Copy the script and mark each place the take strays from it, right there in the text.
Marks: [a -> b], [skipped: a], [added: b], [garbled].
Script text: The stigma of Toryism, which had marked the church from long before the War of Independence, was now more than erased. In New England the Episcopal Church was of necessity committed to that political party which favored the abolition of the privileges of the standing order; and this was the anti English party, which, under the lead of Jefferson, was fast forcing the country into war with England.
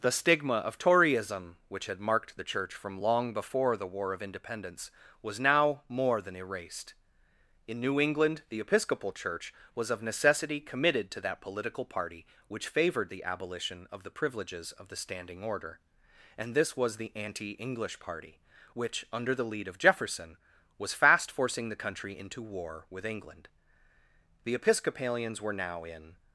The stigma of Toryism, which had marked the church from long before the War of Independence, was now more than erased. In New England the Episcopal Church was of necessity committed to that political party which favored the abolition of the privileges of the standing order; and this was the anti English party, which, under the lead of Jefferson, was fast forcing the country into war with England. [added: The Episcopalians were now in]